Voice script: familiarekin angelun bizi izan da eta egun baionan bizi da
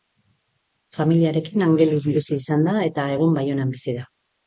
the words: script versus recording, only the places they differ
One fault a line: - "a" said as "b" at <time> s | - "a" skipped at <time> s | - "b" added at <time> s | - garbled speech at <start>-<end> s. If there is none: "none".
none